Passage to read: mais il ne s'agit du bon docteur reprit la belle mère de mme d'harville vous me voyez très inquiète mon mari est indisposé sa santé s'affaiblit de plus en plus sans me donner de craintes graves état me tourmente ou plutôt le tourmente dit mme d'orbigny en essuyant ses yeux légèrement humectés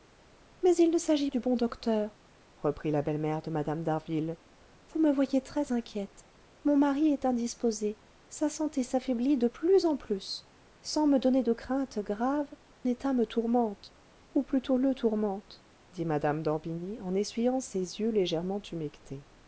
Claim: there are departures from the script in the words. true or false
false